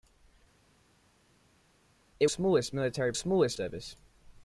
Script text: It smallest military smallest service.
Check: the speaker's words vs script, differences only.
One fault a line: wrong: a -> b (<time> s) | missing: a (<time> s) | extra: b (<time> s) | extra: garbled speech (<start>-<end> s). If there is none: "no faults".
no faults